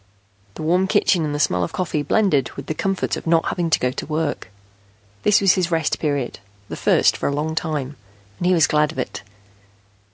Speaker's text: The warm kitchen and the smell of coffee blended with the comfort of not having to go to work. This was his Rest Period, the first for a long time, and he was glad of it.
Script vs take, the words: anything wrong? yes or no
no